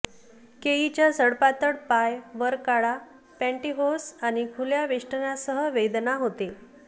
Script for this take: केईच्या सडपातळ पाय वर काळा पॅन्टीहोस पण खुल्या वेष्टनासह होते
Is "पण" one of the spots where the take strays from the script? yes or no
yes